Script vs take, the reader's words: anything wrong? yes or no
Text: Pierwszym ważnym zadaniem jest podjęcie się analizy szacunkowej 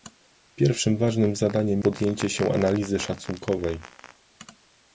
yes